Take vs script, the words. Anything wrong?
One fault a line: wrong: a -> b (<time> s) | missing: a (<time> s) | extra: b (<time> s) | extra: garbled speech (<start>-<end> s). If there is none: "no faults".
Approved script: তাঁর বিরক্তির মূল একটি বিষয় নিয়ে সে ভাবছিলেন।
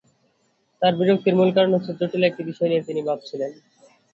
extra: কারণ হচ্ছে জটিল (1.6 s)
wrong: সে -> তিনি (2.9 s)